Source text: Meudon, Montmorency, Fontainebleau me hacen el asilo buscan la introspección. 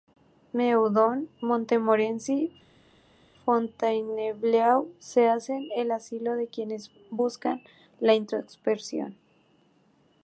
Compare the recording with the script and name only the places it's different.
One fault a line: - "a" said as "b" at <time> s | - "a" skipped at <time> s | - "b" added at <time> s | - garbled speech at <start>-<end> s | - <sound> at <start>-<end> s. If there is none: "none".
- "me" said as "se" at 5.0 s
- "de quienes" added at 6.3 s